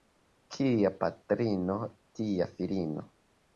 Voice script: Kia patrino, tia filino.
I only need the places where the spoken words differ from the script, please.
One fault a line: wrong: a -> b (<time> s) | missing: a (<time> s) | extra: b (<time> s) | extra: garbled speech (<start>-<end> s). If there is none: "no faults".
no faults